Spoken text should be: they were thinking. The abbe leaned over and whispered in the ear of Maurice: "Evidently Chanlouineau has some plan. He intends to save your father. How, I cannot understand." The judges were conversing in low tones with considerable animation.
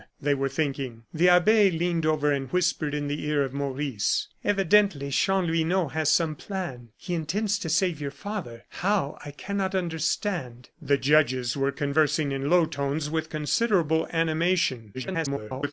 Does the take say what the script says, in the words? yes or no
no